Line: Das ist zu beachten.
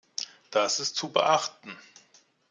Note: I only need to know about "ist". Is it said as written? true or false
true